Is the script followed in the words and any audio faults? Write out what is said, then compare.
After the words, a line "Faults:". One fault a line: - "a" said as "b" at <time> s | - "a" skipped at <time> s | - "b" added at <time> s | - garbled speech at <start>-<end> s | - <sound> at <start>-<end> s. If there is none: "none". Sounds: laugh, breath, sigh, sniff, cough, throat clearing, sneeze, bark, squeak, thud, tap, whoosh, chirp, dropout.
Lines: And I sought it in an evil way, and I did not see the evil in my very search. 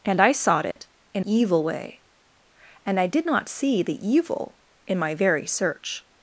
And I sought it in evil way, and I did not see the evil in my very search.
Faults:
- dropout at 0.7-0.8 s
- "an" skipped at 1.2 s